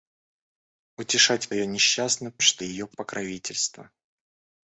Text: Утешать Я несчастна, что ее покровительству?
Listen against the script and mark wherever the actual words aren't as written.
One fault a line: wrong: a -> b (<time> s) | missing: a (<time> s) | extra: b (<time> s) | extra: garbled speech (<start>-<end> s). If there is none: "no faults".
no faults